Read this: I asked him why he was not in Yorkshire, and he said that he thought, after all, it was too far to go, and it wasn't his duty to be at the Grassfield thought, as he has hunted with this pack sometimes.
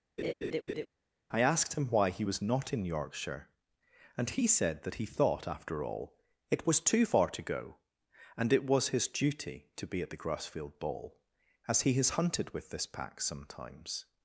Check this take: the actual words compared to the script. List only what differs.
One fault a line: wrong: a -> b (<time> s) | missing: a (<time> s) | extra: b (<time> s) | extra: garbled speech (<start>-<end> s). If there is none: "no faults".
wrong: wasn't -> was (8.6 s)
wrong: thought -> ball (10.8 s)